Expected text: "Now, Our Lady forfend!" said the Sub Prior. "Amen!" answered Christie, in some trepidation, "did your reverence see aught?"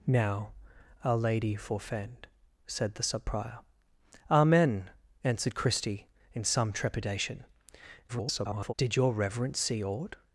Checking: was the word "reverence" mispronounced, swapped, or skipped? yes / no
no